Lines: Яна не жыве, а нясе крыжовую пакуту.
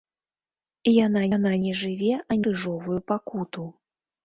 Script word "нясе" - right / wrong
wrong